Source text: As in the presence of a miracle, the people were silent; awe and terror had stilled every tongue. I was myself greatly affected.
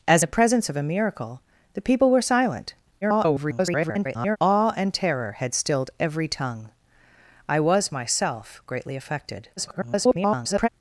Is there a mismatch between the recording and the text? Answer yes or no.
yes